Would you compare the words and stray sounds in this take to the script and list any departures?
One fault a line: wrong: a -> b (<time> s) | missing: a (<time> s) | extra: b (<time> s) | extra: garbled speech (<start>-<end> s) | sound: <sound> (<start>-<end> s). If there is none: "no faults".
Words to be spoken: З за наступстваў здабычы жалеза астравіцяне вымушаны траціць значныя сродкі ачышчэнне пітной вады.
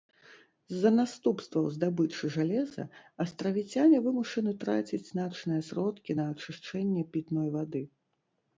extra: на (6.2 s)